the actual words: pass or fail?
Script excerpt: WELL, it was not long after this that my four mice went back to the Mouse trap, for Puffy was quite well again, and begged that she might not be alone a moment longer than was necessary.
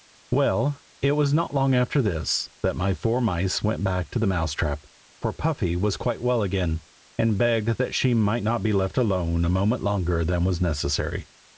fail